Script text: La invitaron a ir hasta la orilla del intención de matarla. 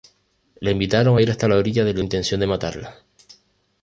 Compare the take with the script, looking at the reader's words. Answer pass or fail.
pass